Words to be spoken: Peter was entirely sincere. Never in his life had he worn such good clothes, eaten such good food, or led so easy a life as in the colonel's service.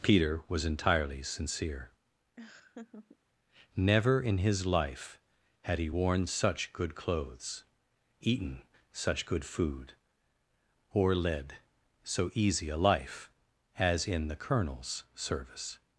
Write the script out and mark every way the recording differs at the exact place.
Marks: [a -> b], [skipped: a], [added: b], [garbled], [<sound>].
Peter was entirely sincere. [laugh] Never in his life had he worn such good clothes, eaten such good food, or led so easy a life as in the colonel's service.